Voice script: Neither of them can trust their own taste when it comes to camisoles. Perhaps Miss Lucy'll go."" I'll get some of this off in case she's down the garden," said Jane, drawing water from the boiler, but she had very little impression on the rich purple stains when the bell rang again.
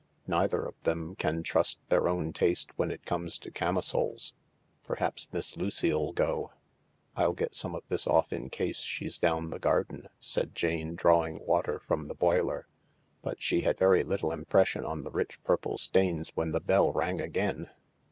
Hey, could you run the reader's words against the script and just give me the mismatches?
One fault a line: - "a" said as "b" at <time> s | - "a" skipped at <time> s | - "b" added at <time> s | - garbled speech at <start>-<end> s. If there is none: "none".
none